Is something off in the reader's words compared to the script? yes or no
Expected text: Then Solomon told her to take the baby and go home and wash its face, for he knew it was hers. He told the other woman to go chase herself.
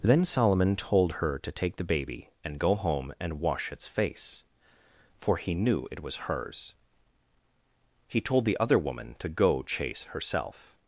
no